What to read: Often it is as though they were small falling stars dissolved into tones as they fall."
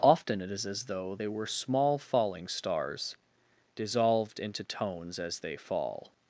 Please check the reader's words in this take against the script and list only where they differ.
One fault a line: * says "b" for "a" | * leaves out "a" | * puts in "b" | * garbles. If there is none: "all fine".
all fine